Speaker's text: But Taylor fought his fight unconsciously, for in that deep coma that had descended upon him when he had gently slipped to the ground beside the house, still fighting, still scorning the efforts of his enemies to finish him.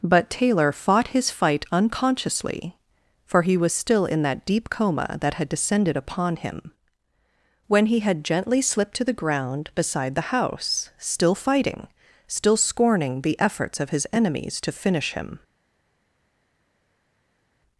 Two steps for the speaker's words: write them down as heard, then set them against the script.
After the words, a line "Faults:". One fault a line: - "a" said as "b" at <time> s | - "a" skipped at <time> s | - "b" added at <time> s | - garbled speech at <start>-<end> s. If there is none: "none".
But Taylor fought his fight unconsciously, for he was still in that deep coma that had descended upon him when he had gently slipped to the ground beside the house, still fighting, still scorning the efforts of his enemies to finish him.
Faults:
- "he was still" added at 3.4 s